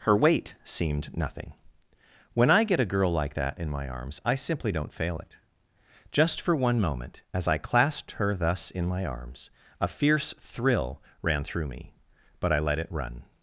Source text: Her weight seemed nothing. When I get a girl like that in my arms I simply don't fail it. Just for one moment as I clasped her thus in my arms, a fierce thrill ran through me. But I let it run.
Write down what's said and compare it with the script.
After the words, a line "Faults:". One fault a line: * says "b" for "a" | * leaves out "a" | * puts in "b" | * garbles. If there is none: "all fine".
Her weight seemed nothing. When I get a girl like that in my arms I simply don't fail it. Just for one moment as I clasped her thus in my arms, a fierce thrill ran through me. But I let it run.
Faults:
all fine